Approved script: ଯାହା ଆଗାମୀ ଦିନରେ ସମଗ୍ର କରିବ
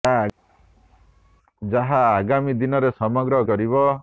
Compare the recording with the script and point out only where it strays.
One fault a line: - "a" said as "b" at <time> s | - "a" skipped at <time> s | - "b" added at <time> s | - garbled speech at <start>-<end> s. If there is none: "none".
none